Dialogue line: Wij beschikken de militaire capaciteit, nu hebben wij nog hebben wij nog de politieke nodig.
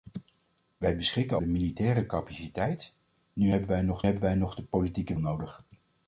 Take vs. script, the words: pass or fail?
pass